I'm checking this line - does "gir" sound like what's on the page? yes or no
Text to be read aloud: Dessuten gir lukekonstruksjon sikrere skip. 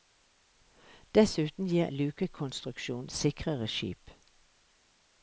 yes